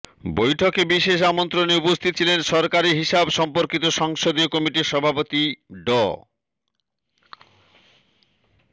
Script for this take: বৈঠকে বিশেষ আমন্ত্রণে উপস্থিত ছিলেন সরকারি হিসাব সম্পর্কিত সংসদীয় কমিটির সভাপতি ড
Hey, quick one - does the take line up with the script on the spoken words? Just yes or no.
yes